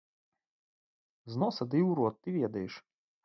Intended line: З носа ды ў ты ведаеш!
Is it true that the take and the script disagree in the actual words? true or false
true